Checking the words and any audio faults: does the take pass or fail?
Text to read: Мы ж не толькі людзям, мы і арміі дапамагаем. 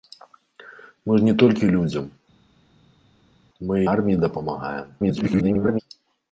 fail